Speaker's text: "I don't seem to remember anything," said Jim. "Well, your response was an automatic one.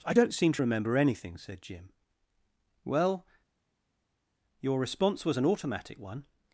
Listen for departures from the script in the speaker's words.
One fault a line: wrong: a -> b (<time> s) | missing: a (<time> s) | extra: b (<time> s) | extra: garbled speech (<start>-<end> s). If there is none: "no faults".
no faults